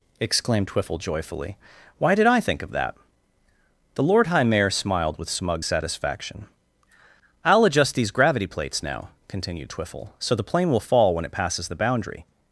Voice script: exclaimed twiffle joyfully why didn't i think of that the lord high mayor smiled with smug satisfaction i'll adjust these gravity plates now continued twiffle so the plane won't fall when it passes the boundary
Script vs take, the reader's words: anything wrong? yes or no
yes